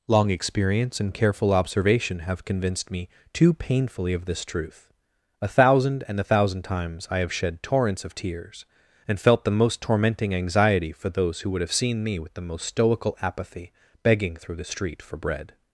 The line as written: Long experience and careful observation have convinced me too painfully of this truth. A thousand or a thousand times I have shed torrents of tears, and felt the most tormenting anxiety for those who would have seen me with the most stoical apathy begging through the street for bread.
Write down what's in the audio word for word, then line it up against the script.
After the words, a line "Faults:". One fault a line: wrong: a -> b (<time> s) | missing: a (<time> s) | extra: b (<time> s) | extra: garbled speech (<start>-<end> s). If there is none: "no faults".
Long experience and careful observation have convinced me too painfully of this truth. A thousand and a thousand times I have shed torrents of tears, and felt the most tormenting anxiety for those who would have seen me with the most stoical apathy begging through the street for bread.
Faults:
wrong: or -> and (6.1 s)